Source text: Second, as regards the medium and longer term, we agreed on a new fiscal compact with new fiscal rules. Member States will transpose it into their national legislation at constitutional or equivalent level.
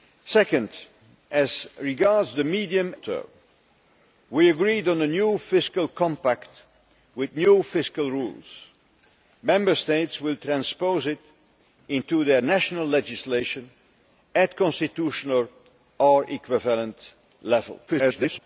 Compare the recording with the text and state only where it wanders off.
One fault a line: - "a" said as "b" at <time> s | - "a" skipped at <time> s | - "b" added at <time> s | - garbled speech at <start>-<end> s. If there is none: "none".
- "and longer" skipped at 2.9 s
- garbled speech at 17.9-18.4 s